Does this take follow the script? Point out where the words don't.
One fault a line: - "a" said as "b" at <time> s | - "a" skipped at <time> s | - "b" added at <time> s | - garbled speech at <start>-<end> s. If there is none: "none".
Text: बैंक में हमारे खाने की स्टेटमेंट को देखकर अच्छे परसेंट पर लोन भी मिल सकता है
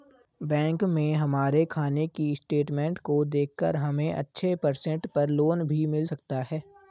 - "हमे" added at 3.8 s